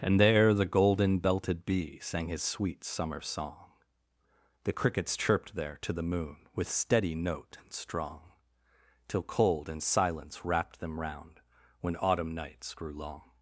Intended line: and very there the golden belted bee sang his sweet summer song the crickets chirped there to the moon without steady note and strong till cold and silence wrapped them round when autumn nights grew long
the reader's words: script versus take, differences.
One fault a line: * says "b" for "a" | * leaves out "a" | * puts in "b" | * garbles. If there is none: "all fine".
* leaves out "very"
* says "with" for "without"